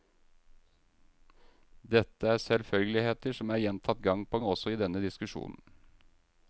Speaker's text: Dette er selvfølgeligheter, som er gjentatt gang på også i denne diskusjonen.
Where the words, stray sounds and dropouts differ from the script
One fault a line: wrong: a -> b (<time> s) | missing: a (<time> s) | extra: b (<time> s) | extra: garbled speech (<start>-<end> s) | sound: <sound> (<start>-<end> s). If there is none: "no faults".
no faults